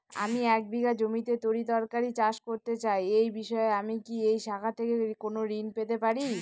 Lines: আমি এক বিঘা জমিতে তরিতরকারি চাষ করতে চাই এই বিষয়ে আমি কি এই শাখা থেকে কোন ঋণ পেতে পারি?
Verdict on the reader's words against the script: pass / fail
pass